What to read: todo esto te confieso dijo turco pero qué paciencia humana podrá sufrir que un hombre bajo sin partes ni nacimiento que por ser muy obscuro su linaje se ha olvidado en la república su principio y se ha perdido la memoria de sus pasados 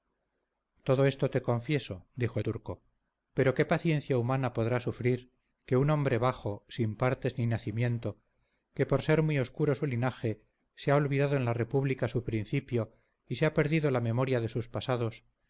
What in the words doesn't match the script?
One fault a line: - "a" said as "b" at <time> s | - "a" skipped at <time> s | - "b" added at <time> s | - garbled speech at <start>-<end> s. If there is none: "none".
none